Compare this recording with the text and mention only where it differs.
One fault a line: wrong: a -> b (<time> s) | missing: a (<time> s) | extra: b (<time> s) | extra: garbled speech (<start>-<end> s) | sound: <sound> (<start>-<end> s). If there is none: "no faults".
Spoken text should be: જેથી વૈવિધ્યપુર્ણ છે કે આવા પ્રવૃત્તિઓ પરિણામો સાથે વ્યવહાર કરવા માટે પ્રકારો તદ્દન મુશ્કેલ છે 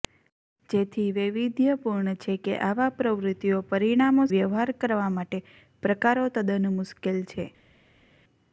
missing: સાથે (4.2 s)